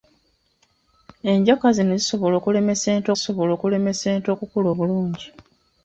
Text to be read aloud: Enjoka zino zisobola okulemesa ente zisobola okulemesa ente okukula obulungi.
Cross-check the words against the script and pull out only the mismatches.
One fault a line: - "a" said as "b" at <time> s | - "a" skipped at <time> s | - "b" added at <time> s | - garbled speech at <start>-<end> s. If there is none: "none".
none